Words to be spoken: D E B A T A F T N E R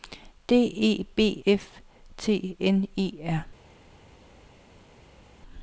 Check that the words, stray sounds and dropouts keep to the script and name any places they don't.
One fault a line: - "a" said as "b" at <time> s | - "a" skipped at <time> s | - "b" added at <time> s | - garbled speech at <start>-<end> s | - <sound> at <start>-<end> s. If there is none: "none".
- "A T A" skipped at 1.4 s